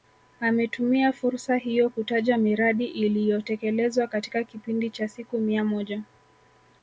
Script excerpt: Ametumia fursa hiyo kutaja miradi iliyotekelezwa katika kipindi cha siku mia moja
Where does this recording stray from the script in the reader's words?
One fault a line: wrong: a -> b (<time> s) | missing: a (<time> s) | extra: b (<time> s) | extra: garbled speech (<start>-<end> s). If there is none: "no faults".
no faults